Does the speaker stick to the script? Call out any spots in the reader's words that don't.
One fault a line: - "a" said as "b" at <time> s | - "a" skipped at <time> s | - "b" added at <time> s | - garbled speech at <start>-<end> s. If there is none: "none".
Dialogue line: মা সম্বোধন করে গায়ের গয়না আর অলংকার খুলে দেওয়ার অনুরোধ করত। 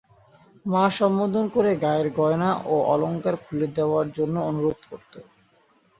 - "আর" said as "ও" at 2.6 s
- "জন্য" added at 4.2 s